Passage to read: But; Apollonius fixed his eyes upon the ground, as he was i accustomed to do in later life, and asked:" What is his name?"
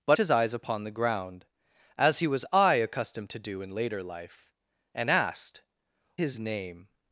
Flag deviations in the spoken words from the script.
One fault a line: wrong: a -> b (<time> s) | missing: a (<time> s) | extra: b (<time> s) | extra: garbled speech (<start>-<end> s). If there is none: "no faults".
missing: Apollonius fixed (0.2 s)
missing: What is (5.6 s)